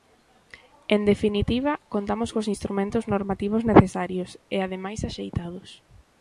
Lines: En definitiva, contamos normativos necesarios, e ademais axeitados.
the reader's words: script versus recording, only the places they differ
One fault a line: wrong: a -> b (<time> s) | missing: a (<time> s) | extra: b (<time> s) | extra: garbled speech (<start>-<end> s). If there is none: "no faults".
extra: cos instrumentos (2.3 s)